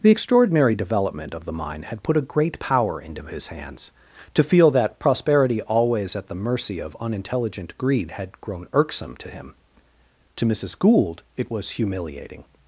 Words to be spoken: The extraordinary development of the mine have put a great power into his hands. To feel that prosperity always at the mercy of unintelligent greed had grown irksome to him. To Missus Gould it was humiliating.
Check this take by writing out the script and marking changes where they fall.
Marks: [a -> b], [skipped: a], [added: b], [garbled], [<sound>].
The extraordinary development of the mine [have -> had] put a great power into his hands. To feel that prosperity always at the mercy of unintelligent greed had grown irksome to him. To Missus Gould it was humiliating.